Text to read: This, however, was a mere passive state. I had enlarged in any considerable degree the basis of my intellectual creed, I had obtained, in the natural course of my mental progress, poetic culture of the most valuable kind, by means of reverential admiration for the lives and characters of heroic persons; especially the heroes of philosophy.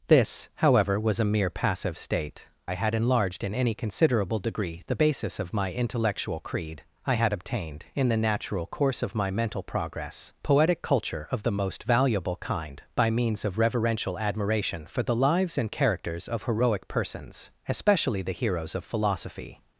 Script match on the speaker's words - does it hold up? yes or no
yes